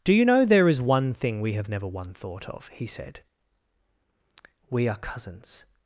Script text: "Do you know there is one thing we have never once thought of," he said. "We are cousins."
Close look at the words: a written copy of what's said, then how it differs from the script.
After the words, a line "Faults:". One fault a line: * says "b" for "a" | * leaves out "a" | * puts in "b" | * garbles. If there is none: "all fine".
"Do you know there is one thing we have never one thought of," he said. "We are cousins."
Faults:
* says "one" for "once"